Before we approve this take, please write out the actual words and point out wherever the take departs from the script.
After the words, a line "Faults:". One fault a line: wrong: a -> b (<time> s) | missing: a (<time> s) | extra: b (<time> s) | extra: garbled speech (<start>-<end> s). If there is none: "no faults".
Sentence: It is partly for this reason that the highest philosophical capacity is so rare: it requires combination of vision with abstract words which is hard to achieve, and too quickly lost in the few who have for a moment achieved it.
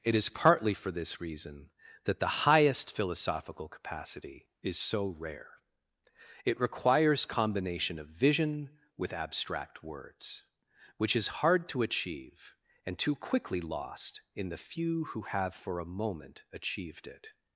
It is partly for this reason that the highest philosophical capacity is so rare: it requires combination of vision with abstract words which is hard to achieve, and too quickly lost in the few who have for a moment achieved it.
Faults:
no faults